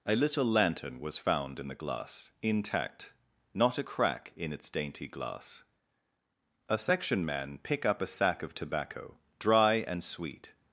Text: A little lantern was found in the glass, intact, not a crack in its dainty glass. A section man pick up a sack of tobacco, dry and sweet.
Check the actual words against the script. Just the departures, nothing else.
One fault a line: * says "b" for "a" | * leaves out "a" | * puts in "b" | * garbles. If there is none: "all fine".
all fine